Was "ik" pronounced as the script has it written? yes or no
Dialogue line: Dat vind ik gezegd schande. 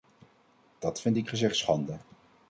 yes